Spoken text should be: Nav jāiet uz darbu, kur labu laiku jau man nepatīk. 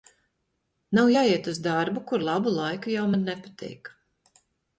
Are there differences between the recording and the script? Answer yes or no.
no